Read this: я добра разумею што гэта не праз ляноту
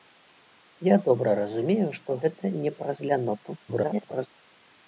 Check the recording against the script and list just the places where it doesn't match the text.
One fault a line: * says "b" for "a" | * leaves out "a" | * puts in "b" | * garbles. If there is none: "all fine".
* garbles